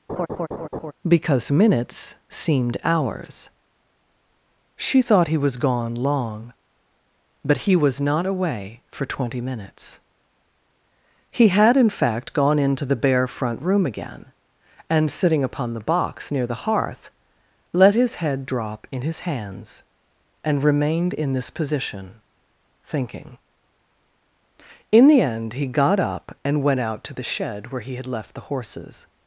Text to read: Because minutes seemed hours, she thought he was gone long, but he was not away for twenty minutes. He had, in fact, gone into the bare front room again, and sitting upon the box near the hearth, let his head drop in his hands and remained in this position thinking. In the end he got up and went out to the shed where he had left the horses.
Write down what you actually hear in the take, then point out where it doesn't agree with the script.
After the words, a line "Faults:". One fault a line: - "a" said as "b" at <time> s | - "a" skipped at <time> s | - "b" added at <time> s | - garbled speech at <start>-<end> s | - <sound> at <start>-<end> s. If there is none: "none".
Because minutes seemed hours, she thought he was gone long, but he was not away for twenty minutes. He had, in fact, gone into the bare front room again, and sitting upon the box near the hearth, let his head drop in his hands and remained in this position thinking. In the end he got up and went out to the shed where he had left the horses.
Faults:
- laugh at 0.1-0.9 s